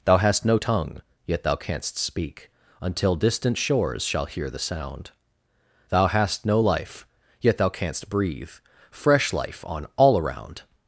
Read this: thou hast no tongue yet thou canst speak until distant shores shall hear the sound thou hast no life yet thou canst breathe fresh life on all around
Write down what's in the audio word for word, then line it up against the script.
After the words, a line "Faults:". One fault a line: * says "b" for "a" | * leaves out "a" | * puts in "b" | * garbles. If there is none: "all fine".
thou hast no tongue yet thou canst speak until distant shores shall hear the sound thou hast no life yet thou canst breathe fresh life on all around
Faults:
all fine